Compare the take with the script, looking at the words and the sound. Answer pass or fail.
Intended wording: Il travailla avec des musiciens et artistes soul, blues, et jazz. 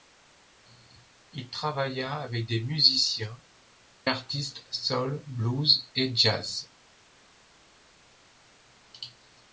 fail